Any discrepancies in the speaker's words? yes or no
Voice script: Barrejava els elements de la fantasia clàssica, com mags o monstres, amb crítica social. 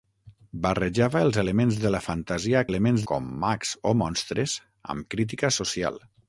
yes